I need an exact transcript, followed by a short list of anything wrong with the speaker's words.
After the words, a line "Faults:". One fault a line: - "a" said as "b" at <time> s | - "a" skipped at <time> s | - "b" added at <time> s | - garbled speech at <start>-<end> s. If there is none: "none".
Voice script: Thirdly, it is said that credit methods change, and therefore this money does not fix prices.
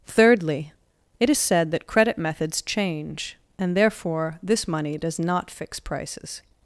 Thirdly, it is said that credit methods change, and therefore this money does not fix prices.
Faults:
none